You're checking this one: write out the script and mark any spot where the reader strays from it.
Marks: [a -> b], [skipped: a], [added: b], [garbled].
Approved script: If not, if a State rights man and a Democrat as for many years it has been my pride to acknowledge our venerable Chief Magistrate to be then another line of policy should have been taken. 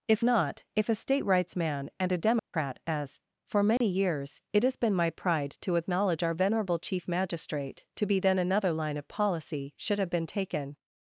If not, if a State rights man and a Democrat as for many years it has been my pride to acknowledge our venerable Chief Magistrate to be then another line of policy should have been taken.